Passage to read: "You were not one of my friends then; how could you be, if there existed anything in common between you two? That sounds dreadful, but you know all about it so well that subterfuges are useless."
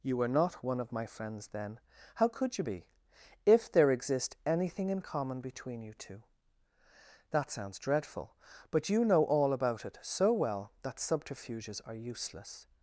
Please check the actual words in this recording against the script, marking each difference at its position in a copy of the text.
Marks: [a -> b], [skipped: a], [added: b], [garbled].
"You were not one of my friends then; how could you be, if there [existed -> exist] anything in common between you two? That sounds dreadful, but you know all about it so well that subterfuges are useless."